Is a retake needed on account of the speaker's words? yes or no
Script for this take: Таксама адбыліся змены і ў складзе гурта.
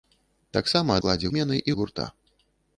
yes